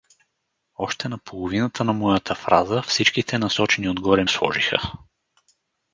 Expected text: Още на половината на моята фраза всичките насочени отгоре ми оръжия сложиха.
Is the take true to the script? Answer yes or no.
no